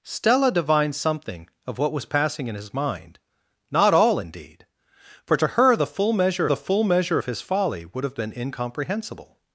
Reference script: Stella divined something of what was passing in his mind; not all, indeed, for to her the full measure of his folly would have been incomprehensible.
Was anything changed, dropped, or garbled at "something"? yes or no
no